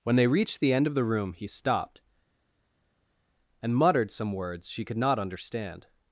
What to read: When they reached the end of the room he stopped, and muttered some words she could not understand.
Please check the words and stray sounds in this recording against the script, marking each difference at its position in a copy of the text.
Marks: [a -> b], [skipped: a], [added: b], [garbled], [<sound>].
When they reached the end of the room he stopped, and muttered some words she could not understand.